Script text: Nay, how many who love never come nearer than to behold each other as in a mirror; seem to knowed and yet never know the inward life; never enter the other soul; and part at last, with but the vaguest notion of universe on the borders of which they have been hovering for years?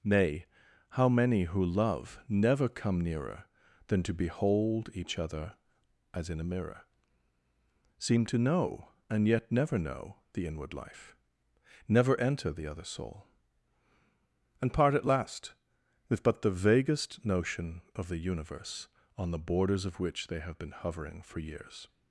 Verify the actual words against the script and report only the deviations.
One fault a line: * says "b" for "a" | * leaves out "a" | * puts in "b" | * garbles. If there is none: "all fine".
* says "know" for "knowed"
* puts in "the"